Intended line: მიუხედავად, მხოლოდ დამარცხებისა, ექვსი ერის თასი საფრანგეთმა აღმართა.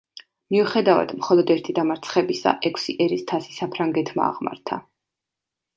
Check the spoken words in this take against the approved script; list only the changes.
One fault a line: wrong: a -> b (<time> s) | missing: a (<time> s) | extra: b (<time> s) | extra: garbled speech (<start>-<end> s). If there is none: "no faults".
extra: ერთი (1.6 s)